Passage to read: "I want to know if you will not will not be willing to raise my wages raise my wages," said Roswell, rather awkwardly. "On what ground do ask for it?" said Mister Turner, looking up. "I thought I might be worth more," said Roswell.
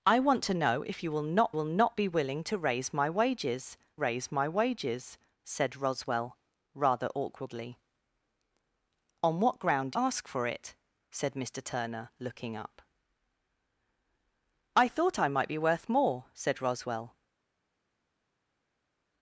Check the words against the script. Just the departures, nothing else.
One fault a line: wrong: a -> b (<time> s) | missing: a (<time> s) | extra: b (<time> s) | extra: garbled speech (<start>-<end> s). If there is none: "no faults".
no faults